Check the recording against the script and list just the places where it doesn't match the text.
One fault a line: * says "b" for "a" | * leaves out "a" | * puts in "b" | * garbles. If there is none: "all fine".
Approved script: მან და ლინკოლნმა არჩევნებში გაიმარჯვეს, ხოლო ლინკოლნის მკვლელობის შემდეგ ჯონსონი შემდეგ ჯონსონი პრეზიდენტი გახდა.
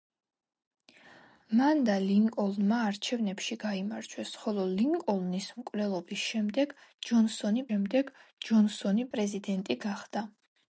all fine